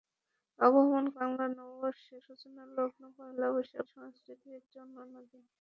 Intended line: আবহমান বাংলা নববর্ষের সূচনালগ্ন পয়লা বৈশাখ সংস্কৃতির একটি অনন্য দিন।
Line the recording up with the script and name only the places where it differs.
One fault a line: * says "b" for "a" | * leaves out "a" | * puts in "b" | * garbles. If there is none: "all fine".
all fine